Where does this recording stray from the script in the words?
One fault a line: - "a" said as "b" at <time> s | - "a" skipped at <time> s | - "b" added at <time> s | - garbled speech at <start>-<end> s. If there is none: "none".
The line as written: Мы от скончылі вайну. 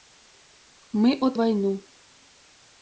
- "скончылі" skipped at 1.3 s